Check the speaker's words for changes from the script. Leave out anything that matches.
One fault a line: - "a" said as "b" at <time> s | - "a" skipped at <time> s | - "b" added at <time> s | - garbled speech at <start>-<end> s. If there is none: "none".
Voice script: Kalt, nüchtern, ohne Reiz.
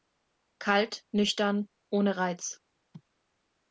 none